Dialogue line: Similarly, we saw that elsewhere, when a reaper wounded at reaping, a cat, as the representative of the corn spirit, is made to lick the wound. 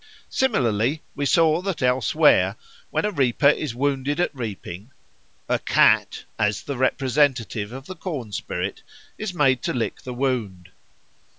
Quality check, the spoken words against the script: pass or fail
fail